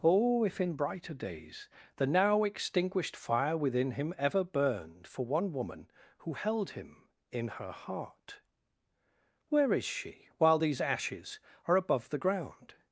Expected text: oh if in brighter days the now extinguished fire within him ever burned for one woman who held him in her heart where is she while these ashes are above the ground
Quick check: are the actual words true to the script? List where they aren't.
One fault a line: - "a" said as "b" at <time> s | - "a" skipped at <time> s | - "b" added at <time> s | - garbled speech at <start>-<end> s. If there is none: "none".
none